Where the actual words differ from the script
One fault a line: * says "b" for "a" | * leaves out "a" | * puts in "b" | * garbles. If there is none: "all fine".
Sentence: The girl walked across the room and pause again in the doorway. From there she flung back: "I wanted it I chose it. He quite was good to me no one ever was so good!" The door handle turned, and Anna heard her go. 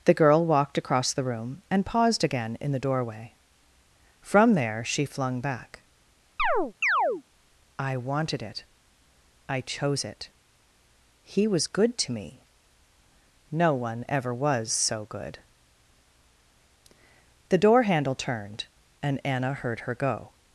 * says "paused" for "pause"
* leaves out "quite"